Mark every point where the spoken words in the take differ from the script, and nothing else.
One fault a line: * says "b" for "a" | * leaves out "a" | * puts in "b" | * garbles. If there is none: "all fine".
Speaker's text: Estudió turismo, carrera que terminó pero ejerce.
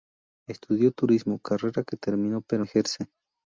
all fine